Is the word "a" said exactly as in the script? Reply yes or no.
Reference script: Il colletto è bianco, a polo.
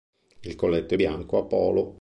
yes